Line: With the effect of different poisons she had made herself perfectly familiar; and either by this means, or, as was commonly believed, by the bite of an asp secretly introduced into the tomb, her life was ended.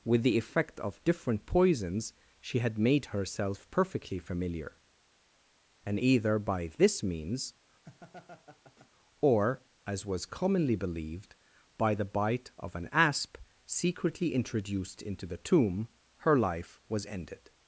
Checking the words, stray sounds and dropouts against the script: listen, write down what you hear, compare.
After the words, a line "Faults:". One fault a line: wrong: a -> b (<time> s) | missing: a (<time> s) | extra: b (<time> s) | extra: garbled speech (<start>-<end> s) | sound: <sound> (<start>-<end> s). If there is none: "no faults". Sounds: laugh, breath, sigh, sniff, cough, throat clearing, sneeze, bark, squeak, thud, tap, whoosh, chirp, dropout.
With the effect of different poisons she had made herself perfectly familiar; and either by this means, or, as was commonly believed, by the bite of an asp secretly introduced into the tomb, her life was ended.
Faults:
sound: laugh (7.8-8.9 s)